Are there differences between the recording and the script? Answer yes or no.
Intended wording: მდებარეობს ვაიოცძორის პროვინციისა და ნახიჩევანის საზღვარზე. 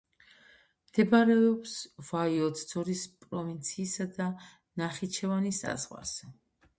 no